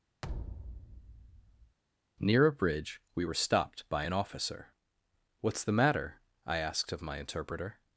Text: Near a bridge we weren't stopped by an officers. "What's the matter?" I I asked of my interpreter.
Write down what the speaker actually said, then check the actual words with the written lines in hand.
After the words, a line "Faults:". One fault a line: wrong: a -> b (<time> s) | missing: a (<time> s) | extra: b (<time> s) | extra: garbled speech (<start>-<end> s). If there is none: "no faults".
Near a bridge we were stopped by an officer. "What's the matter?" I asked of my interpreter.
Faults:
wrong: weren't -> were (3.2 s)
wrong: officers -> officer (4.1 s)
missing: I (6.6 s)